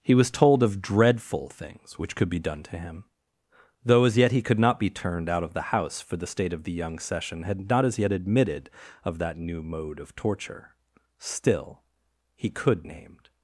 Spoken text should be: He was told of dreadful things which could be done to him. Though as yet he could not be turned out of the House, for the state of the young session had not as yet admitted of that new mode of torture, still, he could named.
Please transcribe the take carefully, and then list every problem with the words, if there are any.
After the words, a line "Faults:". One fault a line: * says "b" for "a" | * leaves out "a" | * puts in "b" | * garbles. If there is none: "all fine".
He was told of dreadful things which could be done to him. Though as yet he could not be turned out of the House, for the state of the young session had not as yet admitted of that new mode of torture, still, he could named.
Faults:
all fine